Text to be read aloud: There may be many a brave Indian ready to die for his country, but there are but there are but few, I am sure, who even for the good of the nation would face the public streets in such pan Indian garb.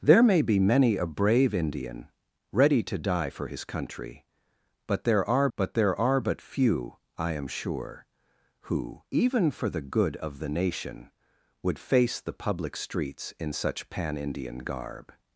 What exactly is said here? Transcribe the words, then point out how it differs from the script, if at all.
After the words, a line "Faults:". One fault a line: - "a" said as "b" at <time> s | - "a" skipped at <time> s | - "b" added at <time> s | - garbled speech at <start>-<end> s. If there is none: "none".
There may be many a brave Indian ready to die for his country, but there are but there are but few, I am sure, who even for the good of the nation would face the public streets in such pan Indian garb.
Faults:
none